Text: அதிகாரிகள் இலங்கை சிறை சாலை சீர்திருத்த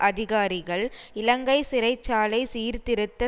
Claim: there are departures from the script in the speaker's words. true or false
false